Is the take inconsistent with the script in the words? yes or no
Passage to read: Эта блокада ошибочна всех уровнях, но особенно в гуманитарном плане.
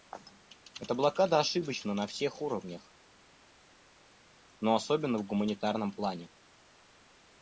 yes